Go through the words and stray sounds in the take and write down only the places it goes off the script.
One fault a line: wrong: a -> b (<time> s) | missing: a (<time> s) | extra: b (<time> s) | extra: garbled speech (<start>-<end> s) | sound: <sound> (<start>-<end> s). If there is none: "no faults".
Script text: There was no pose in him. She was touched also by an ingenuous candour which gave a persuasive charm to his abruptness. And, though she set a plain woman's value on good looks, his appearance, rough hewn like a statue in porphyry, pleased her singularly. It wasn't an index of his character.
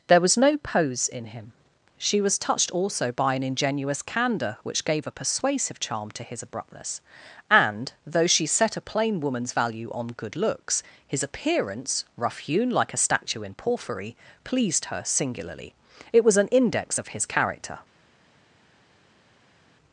wrong: wasn't -> was (16.2 s)